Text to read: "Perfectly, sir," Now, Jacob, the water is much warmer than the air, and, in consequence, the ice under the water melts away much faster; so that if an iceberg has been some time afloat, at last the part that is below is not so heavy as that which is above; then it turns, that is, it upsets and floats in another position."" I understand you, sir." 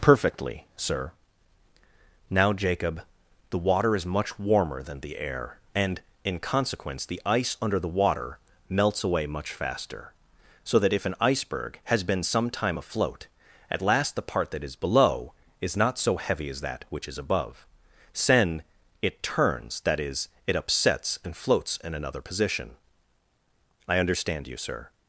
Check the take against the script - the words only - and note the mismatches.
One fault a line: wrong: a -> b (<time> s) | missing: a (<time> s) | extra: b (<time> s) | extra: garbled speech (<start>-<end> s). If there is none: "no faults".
wrong: then -> sen (18.1 s)